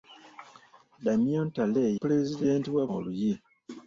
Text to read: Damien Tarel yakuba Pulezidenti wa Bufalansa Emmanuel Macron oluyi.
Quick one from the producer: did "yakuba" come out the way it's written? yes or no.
no